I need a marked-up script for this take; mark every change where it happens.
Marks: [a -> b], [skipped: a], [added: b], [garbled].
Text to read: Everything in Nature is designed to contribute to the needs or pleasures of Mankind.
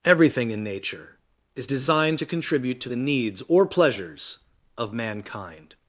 Everything in Nature is designed to contribute to the needs or pleasures of Mankind.